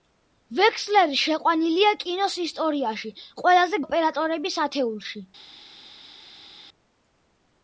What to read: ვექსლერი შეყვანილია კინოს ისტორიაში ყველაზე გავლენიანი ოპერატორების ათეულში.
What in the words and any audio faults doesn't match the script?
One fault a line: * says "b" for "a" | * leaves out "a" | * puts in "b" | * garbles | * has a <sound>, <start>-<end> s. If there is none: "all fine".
* leaves out "გავლენიანი"